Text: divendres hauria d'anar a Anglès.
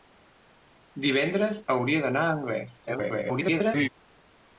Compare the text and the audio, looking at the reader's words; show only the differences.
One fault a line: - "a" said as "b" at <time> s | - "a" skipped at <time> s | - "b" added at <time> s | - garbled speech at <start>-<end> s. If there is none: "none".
- garbled speech at 2.9-3.9 s